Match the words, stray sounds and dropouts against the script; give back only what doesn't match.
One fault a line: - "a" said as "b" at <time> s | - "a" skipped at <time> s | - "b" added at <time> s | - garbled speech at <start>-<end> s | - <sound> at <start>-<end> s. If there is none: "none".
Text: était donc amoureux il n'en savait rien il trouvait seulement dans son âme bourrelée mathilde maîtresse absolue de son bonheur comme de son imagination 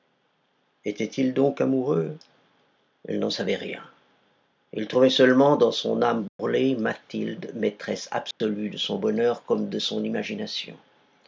- "il" added at 1.1 s
- dropout at 6.3-6.4 s
- dropout at 8.3-8.4 s